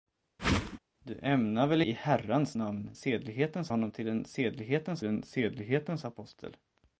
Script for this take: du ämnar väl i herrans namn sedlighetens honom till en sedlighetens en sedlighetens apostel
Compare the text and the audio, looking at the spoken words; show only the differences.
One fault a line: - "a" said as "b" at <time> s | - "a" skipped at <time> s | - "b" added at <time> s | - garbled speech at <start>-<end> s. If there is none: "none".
none